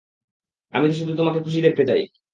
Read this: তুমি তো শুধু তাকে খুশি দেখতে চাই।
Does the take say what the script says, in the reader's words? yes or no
no